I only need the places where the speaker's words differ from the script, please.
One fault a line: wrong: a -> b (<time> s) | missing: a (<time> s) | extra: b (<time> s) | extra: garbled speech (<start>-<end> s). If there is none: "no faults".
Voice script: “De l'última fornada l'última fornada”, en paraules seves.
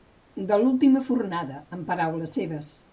missing: l'última fornada (1.6 s)